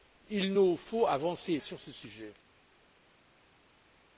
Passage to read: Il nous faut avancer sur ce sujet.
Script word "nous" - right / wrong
right